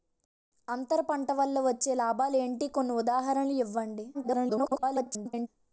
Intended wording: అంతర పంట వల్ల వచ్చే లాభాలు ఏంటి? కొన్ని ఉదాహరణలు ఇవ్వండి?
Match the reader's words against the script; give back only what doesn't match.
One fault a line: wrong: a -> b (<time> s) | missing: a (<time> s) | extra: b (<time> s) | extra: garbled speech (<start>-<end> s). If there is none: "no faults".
extra: garbled speech (4.1-5.5 s)